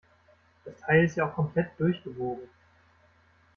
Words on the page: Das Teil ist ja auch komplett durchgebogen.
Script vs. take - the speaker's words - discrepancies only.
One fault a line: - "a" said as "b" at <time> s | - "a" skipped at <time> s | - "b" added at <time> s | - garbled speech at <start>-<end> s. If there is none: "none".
none